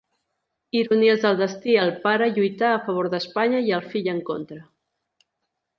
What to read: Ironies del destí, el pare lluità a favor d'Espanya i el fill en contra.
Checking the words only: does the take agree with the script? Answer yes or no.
yes